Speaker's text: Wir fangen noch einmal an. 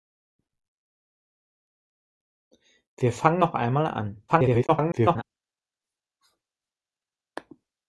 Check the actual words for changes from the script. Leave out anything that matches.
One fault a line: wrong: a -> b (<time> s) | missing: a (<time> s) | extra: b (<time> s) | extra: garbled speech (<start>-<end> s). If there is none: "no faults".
extra: garbled speech (4.3-5.2 s)